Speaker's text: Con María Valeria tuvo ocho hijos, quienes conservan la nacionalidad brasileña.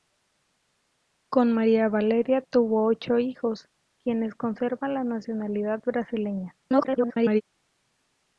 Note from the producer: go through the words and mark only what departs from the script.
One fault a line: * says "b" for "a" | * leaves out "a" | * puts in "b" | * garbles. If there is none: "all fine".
* garbles